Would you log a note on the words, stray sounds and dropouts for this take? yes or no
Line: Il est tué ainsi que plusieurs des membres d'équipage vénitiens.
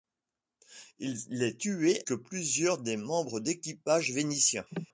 yes